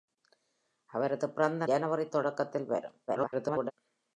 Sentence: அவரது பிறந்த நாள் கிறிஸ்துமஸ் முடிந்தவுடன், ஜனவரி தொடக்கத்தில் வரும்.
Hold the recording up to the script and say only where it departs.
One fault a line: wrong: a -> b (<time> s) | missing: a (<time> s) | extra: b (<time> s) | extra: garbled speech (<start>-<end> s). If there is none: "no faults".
missing: நாள் கிறிஸ்துமஸ் முடிந்தவுடன் (1.6 s)
extra: garbled speech (3.1-3.7 s)